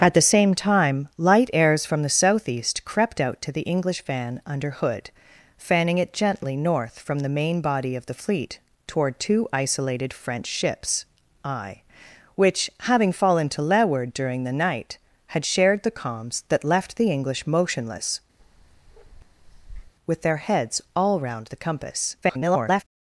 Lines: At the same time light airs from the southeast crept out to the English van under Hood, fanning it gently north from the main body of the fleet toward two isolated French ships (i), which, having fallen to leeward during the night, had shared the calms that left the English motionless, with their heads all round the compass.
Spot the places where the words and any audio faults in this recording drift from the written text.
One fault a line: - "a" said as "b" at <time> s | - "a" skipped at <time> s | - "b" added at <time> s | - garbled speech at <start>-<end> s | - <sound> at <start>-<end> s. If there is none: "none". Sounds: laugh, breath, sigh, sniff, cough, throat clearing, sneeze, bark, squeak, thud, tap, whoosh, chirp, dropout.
- bark at 18.4-19.9 s
- garbled speech at 22.2-22.8 s